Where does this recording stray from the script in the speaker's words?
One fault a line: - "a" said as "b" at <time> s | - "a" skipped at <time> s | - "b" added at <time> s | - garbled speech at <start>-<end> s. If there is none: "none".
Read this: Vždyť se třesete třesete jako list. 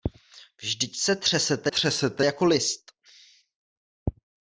none